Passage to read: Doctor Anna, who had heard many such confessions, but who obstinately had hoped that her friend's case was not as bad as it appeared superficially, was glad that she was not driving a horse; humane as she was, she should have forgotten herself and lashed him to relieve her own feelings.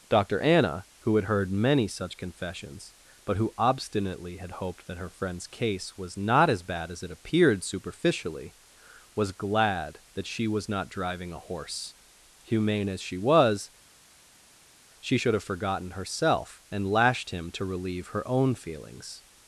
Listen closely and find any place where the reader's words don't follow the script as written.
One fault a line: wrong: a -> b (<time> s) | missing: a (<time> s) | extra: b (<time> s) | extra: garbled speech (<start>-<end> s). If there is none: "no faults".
no faults